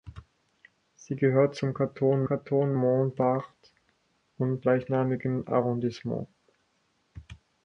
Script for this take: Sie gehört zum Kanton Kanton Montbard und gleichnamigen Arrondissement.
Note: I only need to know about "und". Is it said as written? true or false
true